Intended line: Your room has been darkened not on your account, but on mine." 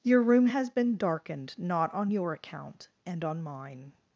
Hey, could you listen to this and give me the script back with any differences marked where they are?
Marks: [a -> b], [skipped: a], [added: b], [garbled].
Your room has been darkened not on your account, [but -> and] on mine."